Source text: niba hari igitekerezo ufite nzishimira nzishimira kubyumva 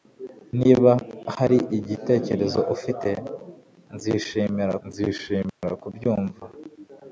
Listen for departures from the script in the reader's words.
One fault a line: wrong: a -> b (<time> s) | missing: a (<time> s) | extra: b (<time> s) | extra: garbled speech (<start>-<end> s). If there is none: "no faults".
no faults